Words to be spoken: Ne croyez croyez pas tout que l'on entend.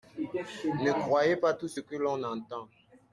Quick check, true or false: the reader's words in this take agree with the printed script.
false